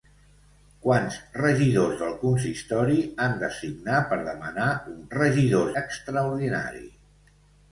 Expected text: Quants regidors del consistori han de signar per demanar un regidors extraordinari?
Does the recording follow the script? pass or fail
pass